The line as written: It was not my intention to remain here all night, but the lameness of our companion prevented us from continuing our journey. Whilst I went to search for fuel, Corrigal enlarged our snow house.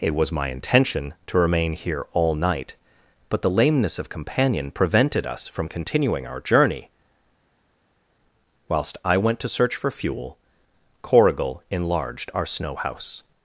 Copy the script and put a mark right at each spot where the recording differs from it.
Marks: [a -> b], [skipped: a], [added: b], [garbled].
It was [skipped: not] my intention to remain here all night, but the lameness of [skipped: our] companion prevented us from continuing our journey. Whilst I went to search for fuel, Corrigal enlarged our snow house.